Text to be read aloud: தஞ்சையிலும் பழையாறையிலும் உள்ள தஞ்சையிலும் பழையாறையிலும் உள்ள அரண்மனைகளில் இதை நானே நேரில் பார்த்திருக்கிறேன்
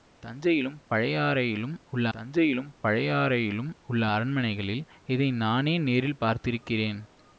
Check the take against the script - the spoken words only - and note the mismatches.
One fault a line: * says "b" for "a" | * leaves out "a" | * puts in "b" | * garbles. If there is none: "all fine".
all fine